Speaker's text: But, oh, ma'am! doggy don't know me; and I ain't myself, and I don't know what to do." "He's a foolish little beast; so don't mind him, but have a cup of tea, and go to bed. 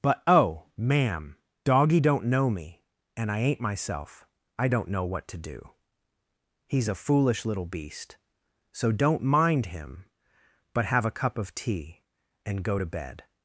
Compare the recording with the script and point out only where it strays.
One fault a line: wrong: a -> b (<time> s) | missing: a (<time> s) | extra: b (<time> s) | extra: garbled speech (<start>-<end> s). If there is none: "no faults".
missing: and (4.3 s)